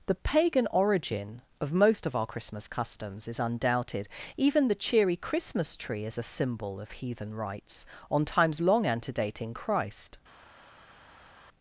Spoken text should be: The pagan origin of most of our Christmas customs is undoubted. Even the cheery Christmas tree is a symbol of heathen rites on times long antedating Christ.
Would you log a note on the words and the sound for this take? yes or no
no